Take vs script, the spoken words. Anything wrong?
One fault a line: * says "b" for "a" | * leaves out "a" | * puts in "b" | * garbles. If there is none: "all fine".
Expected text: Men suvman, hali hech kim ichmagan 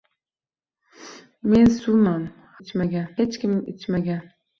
* says "ichmagan" for "hali"